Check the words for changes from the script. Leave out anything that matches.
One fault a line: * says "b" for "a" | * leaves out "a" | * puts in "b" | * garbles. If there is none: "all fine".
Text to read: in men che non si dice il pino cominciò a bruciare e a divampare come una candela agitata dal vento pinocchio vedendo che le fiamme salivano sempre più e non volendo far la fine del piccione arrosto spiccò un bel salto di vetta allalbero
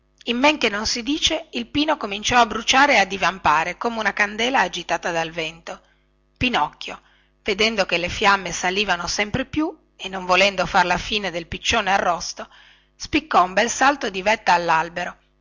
all fine